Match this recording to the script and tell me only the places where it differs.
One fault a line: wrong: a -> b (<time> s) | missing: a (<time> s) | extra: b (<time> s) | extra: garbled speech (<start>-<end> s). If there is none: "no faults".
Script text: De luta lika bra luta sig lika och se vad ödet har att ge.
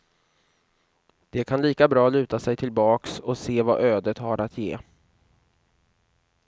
wrong: luta -> kan (1.4 s)
wrong: lika -> tillbaks (2.5 s)